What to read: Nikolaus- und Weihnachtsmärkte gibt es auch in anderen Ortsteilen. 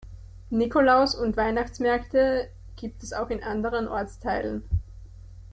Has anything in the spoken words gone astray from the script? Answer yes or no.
no